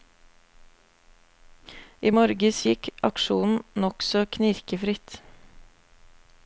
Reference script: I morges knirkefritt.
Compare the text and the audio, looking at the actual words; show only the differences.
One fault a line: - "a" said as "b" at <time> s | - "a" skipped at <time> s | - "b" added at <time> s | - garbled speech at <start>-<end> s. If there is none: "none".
- "gikk aksjonen nokså" added at 2.7 s